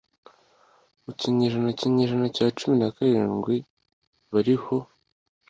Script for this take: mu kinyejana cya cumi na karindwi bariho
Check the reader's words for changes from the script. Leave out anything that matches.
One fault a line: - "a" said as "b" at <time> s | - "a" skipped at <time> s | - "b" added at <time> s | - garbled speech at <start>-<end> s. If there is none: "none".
- "kinyejana" added at 1.8 s